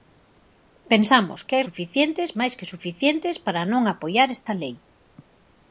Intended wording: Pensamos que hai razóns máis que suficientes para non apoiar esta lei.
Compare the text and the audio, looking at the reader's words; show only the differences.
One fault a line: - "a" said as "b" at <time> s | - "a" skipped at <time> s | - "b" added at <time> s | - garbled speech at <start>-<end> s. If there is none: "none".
- "razóns" said as "suficientes" at 1.7 s